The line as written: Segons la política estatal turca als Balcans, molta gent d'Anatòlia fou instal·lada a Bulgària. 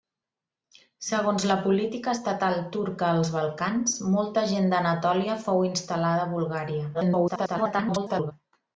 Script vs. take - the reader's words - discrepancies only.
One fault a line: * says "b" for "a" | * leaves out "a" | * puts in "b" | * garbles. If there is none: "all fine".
* garbles